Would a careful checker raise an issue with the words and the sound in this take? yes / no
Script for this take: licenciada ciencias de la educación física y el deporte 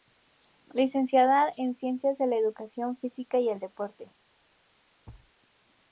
yes